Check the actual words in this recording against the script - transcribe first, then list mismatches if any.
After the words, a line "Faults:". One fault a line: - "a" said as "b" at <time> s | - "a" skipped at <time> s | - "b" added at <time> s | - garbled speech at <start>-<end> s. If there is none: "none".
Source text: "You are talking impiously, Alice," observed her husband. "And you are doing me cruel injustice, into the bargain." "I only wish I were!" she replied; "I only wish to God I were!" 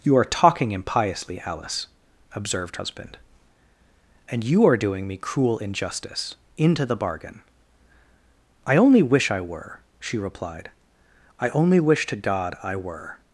"You are talking impiously, Alice," observed husband. "And you are doing me cruel injustice, into the bargain." "I only wish I were!" she replied; "I only wish to God I were!"
Faults:
- "her" skipped at 2.8 s